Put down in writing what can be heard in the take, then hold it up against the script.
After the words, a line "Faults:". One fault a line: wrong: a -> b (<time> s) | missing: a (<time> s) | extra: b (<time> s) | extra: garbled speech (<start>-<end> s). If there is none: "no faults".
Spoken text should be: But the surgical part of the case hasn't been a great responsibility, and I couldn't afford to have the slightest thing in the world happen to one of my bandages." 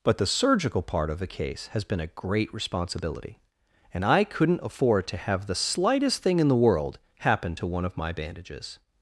But the surgical part of the case has been a great responsibility, and I couldn't afford to have the slightest thing in the world happen to one of my bandages."
Faults:
wrong: hasn't -> has (1.7 s)